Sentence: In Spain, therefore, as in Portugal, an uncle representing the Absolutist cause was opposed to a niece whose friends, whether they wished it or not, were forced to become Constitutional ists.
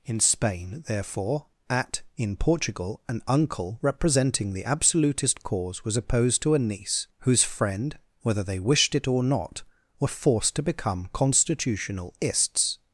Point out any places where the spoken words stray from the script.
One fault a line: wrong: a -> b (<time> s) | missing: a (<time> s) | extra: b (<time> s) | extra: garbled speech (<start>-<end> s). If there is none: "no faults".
wrong: as -> at (1.7 s)
wrong: friends -> friend (7.4 s)